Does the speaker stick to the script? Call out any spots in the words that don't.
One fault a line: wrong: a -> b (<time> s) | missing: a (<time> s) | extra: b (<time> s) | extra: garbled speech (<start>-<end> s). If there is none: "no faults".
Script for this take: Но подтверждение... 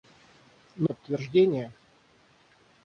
no faults